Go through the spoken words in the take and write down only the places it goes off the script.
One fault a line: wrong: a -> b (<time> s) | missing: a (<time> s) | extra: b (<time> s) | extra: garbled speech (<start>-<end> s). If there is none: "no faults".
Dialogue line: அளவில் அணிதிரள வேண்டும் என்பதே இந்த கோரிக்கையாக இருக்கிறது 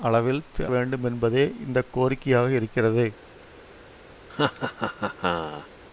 missing: அணிதிரள (0.4 s)